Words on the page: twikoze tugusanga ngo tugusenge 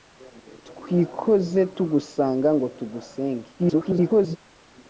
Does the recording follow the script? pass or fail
fail